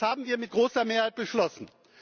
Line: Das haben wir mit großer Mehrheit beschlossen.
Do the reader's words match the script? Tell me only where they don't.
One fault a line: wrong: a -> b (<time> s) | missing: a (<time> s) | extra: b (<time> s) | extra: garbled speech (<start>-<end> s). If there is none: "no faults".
no faults